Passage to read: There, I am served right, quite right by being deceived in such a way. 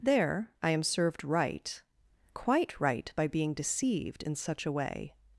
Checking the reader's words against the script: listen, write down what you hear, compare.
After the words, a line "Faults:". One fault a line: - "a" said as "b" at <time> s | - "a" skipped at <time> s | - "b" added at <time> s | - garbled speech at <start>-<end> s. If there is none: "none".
There, I am served right, quite right by being deceived in such a way.
Faults:
none